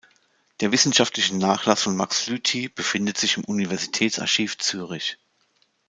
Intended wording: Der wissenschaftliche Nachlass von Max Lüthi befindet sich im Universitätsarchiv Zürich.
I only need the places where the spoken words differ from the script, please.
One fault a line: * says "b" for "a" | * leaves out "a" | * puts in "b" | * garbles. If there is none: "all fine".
all fine